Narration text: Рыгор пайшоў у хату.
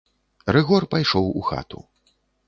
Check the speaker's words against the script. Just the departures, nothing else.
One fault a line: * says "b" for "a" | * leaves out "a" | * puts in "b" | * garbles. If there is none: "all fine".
all fine